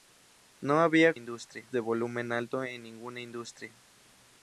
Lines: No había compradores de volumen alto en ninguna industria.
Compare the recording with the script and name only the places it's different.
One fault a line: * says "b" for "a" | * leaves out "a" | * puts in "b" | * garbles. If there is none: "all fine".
* says "industria" for "compradores"